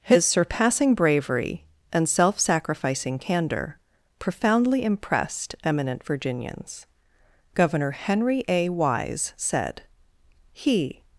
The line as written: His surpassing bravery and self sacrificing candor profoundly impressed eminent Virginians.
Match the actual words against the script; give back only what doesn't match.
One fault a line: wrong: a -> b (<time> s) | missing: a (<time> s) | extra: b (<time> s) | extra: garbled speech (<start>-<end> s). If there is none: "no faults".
extra: Governor Henry A Wise said He (7.5 s)